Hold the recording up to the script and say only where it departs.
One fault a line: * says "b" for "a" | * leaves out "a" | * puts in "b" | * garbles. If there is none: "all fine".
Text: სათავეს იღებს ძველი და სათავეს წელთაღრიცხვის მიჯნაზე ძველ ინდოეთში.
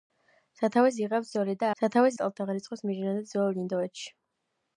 all fine